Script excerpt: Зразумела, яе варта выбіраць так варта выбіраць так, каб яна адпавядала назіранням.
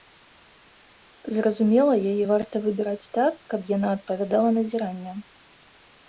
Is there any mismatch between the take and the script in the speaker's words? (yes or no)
yes